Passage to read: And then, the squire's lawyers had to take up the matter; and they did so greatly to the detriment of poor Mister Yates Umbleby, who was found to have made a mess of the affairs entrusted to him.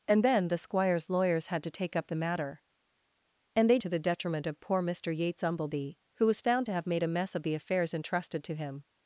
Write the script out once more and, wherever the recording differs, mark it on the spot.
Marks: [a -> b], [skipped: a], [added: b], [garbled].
And then, the squire's lawyers had to take up the matter; and they [skipped: did so greatly] to the detriment of poor Mister Yates Umbleby, who was found to have made a mess of the affairs entrusted to him.